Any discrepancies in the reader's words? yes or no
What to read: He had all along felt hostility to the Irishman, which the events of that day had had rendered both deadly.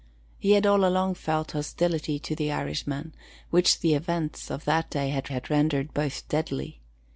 no